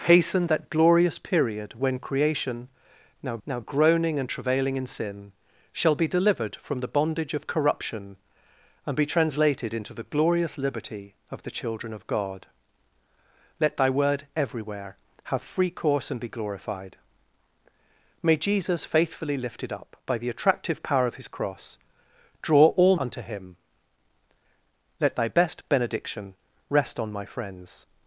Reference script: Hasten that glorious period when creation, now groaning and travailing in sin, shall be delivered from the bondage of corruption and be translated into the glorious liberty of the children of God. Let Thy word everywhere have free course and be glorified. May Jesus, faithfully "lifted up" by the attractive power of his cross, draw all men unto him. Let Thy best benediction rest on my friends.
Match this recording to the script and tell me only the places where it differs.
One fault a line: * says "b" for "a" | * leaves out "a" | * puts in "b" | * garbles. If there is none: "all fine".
* puts in "now"
* leaves out "men"